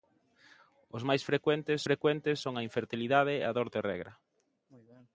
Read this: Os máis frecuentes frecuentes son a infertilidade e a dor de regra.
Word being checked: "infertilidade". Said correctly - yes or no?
yes